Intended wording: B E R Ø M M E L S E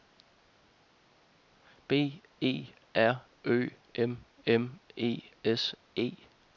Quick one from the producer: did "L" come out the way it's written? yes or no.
no